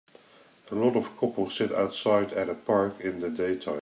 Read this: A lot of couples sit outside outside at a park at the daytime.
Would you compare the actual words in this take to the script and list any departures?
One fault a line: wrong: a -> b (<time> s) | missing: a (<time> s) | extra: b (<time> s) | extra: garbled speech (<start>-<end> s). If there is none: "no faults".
missing: outside (2.3 s)
wrong: at -> in (3.0 s)